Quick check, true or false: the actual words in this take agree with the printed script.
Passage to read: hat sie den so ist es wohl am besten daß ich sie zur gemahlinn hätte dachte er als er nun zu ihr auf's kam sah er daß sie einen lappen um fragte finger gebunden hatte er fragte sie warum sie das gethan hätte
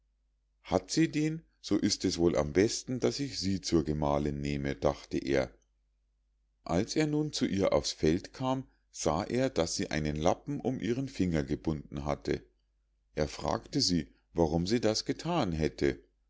false